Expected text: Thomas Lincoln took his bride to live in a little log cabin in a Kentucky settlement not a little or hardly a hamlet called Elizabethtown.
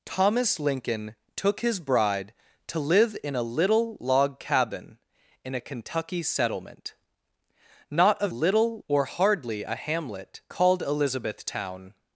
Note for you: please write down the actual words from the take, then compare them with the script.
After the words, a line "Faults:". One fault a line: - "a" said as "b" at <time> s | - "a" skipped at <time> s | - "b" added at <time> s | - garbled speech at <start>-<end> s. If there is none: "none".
Thomas Lincoln took his bride to live in a little log cabin in a Kentucky settlement not a little or hardly a hamlet called Elizabethtown.
Faults:
none